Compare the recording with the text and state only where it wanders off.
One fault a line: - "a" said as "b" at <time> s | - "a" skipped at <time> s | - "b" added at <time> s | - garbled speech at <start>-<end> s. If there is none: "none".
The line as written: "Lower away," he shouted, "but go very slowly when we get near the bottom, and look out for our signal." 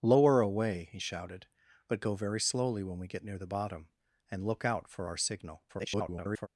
- garbled speech at 5.7-6.5 s